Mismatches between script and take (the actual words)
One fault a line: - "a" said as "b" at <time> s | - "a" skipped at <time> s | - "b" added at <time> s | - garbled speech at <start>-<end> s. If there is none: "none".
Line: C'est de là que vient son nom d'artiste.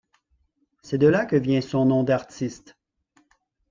none